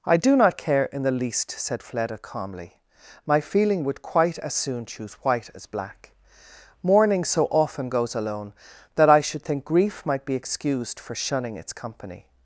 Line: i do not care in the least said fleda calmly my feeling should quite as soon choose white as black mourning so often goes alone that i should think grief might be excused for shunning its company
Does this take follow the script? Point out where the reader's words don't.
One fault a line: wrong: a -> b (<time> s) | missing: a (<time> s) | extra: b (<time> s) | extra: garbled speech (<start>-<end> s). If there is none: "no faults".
wrong: should -> would (3.8 s)